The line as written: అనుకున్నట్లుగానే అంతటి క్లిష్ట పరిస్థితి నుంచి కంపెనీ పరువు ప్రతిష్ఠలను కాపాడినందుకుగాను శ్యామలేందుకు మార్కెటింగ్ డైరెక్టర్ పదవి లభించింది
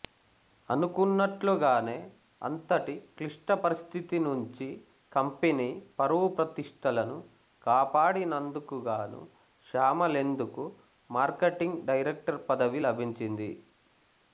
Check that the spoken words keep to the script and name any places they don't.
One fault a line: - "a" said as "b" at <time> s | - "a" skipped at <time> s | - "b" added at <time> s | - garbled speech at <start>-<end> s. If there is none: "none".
none